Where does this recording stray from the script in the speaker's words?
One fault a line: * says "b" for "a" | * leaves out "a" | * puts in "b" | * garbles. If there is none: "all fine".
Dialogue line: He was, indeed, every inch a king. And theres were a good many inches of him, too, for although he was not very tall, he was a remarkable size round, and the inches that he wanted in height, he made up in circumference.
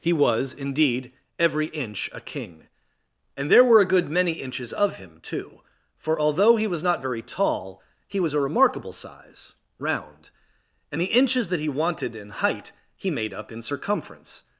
* says "there" for "theres"